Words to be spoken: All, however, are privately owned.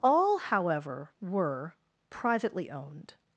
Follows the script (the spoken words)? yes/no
no